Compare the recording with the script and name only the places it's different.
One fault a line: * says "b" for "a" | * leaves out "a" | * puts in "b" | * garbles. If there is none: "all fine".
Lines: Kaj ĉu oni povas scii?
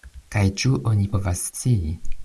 all fine